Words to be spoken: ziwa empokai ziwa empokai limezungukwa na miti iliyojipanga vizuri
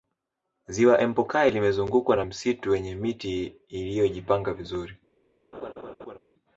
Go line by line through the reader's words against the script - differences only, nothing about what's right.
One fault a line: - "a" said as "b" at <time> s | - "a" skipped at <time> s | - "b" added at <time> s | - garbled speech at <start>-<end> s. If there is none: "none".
- "ziwa empokai limezungukwa na" said as "limezungukwa na msitu wenye" at 1.5 s